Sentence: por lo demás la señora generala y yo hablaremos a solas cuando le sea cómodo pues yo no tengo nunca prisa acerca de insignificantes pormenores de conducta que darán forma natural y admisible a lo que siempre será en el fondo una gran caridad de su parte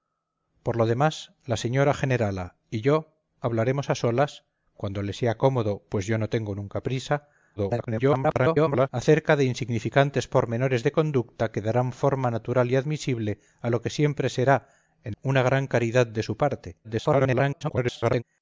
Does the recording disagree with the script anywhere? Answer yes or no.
yes